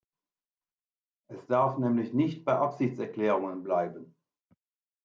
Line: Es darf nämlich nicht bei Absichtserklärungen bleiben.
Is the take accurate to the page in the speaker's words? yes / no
yes